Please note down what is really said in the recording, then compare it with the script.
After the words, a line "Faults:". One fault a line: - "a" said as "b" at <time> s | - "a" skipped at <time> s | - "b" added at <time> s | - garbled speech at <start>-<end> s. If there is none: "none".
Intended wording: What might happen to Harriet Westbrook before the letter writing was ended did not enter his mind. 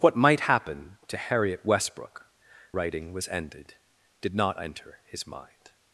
What might happen to Harriet Westbrook writing was ended did not enter his mind.
Faults:
- "before the letter" skipped at 2.2 s